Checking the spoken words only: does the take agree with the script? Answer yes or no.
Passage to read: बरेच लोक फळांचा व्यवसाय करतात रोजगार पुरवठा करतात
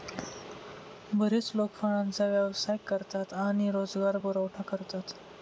no